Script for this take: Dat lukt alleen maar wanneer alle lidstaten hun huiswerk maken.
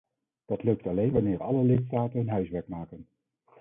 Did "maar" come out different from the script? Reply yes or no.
yes